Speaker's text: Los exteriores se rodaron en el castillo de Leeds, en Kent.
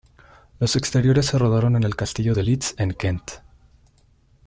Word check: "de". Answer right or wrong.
right